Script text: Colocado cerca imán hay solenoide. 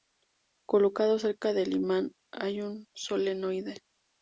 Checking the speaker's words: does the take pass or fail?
fail